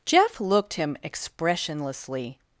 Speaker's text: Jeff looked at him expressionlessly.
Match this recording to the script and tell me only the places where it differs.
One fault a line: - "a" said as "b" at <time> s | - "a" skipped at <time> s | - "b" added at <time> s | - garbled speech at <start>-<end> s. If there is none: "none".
- "at" skipped at 0.7 s